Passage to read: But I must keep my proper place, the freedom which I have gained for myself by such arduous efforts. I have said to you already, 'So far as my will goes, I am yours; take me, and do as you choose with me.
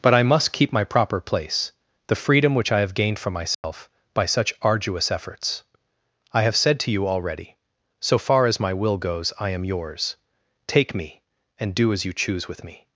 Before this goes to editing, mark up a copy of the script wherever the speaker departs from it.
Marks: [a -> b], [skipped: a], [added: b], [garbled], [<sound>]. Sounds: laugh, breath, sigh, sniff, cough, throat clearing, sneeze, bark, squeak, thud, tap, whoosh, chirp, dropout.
But I must keep my proper place, the freedom which I have gained for myself [dropout] by such arduous efforts. I have said to you already, 'So far as my will goes, I am yours; take me, and do as you choose with me.